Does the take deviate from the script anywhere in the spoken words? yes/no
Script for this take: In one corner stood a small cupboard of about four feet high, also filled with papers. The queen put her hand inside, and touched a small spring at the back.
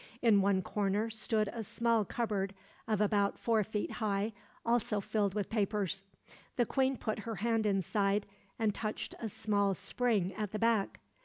no